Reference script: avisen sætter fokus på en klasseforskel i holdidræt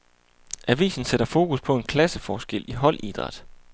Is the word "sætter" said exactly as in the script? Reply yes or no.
yes